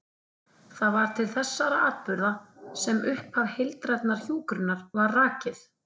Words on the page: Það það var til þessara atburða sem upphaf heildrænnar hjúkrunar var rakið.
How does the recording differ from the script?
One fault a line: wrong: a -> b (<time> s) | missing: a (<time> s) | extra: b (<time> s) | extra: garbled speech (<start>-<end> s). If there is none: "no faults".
missing: það (0.9 s)